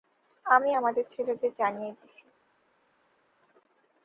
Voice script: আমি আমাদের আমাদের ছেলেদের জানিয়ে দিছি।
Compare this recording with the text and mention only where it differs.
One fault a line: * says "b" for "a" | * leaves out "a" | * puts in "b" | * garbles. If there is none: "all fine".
* leaves out "আমাদের"